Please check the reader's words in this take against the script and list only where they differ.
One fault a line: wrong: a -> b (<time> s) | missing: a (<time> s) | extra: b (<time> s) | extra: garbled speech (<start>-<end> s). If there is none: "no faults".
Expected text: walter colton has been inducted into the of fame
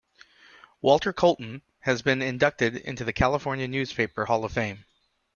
extra: california newspaper hall (3.1 s)